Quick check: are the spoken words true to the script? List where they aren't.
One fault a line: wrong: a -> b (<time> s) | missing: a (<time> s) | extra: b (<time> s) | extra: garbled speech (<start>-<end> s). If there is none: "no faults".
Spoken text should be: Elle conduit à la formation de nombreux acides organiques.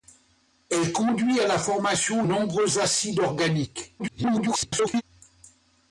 missing: de (2.2 s)
extra: garbled speech (4.0-5.0 s)